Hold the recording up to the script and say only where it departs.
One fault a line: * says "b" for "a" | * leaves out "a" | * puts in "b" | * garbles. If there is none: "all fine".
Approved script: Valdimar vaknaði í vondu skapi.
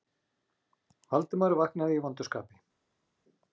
all fine